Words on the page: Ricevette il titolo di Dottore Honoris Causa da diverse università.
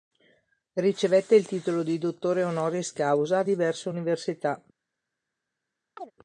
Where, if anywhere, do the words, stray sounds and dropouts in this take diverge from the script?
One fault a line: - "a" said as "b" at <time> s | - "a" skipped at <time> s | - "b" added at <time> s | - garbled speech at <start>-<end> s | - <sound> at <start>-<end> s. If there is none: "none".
- "da" skipped at 3.4 s
- chirp at 6.0-6.1 s